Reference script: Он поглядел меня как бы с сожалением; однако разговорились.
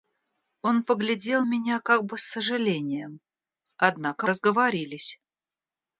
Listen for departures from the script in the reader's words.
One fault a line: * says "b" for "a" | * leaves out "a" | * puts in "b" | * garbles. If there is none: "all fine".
all fine